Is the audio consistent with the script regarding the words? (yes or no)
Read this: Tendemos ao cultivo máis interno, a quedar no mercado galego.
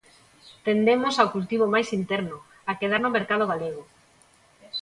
yes